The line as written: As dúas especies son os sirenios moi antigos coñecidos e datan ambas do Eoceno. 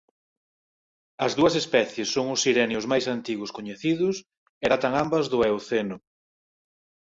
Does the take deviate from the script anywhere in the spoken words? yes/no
yes